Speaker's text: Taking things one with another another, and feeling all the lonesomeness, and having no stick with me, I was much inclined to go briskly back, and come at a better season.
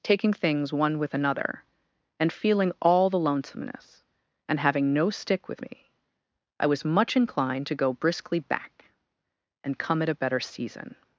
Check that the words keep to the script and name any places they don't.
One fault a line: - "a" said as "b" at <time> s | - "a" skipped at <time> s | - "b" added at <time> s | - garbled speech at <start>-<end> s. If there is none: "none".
- "another" skipped at 1.6 s